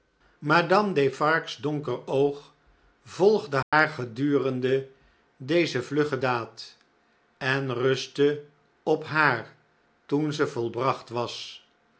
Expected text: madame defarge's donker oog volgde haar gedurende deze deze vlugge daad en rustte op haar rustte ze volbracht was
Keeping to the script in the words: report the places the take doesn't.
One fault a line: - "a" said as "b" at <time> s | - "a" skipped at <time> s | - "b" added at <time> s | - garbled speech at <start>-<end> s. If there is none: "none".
- "deze" skipped at 5.8 s
- "rustte" said as "toen" at 10.0 s